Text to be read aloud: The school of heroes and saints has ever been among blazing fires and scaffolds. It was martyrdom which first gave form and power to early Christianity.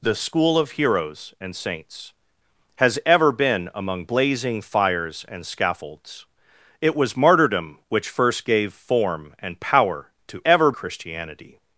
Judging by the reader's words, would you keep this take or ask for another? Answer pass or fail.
fail